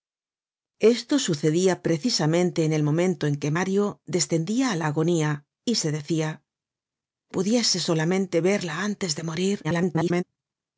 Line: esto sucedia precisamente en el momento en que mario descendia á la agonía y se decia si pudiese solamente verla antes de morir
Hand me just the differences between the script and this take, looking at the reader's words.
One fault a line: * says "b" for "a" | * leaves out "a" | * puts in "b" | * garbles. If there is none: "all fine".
* leaves out "si"
* garbles